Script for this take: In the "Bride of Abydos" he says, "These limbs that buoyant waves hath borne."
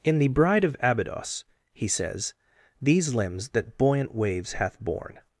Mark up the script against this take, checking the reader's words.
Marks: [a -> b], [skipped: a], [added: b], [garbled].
In the "Bride of Abydos" he says, "These limbs that buoyant waves hath borne."